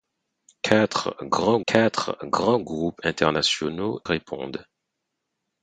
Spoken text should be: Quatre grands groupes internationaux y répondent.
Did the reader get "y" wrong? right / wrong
wrong